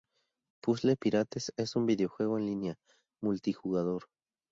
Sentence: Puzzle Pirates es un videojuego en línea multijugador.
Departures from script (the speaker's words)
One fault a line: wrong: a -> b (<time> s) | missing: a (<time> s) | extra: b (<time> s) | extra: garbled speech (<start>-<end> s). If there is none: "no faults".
no faults